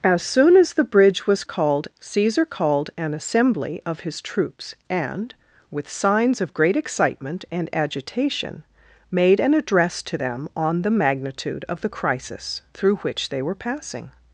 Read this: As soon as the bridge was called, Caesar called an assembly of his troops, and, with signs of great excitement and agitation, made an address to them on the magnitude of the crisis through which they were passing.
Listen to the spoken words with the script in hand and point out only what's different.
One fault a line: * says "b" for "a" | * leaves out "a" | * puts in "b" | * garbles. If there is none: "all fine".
all fine